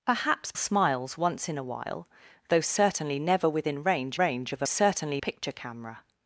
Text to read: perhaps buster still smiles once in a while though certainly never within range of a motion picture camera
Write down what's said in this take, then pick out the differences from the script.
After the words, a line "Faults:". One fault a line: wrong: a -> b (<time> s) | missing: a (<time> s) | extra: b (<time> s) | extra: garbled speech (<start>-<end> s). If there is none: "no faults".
perhaps smiles once in a while though certainly never within range range of a certainly picture camera
Faults:
missing: buster still (0.5 s)
extra: range (4.1 s)
wrong: motion -> certainly (4.6 s)